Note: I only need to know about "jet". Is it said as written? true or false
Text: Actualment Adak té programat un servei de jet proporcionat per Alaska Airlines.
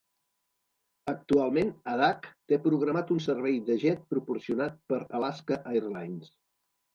true